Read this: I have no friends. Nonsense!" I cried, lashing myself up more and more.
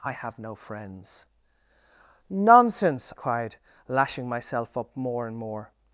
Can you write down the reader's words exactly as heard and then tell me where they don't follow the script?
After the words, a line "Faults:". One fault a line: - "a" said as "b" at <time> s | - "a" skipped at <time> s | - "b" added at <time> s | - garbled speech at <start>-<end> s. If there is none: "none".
I have no friends. Nonsense!" cried, lashing myself up more and more.
Faults:
- "I" skipped at 3.1 s